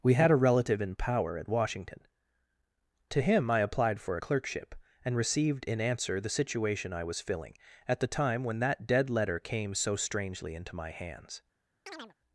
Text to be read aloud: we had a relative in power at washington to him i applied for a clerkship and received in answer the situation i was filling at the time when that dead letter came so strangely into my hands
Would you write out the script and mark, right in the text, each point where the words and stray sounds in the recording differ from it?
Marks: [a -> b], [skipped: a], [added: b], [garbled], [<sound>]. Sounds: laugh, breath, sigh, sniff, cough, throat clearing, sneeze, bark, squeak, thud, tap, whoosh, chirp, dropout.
we had a relative in power at washington to him i applied for a clerkship and received in answer the situation i was filling at the time when that dead letter came so strangely into my hands [chirp]